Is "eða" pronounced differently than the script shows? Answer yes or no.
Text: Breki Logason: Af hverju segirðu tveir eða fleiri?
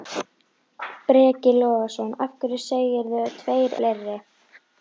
yes